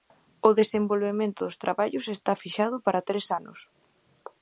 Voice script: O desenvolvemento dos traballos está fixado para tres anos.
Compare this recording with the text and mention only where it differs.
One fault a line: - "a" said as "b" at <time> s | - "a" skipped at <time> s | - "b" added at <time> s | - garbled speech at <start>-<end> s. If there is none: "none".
none